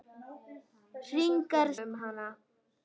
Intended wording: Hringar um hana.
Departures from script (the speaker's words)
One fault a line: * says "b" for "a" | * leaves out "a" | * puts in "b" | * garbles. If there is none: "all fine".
all fine